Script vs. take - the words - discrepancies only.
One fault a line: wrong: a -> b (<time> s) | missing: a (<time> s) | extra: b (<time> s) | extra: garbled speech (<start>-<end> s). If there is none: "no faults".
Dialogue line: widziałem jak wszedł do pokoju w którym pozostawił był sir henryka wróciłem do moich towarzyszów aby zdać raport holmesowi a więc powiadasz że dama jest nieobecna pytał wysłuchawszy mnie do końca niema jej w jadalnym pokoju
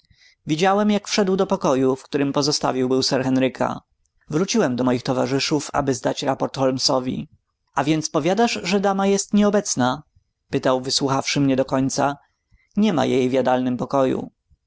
no faults